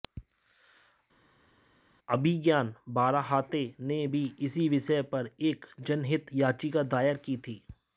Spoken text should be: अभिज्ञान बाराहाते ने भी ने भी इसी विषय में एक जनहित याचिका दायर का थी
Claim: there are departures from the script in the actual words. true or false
true